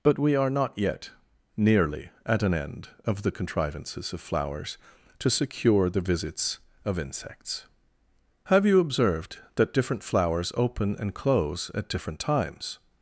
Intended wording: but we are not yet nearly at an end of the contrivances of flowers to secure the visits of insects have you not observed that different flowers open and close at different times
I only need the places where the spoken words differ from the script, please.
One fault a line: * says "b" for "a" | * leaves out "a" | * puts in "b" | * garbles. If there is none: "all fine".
* leaves out "not"